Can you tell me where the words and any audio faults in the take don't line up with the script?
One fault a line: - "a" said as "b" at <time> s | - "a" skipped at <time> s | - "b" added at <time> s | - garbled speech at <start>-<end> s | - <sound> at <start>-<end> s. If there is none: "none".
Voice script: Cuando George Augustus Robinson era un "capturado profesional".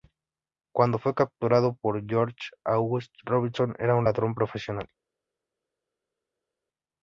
- "fue capturado por" added at 1.0 s
- "capturado" said as "ladrón" at 4.0 s